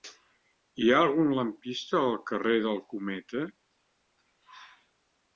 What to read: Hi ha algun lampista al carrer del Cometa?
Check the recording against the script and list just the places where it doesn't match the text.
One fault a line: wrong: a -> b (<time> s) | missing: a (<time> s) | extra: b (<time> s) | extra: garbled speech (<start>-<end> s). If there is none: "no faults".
no faults